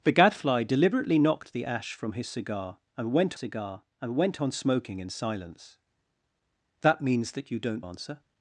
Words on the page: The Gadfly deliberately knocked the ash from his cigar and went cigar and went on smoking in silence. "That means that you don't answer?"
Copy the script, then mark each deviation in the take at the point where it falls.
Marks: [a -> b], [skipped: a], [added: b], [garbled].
The Gadfly deliberately knocked the ash from his cigar and went cigar and went on smoking in silence. "That means that you don't answer?"